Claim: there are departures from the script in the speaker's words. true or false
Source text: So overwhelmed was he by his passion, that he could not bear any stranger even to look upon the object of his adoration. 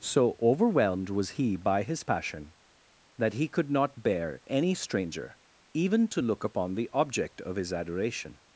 false